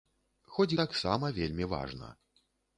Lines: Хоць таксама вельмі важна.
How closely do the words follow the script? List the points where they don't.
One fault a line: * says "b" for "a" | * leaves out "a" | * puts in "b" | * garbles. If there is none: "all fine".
all fine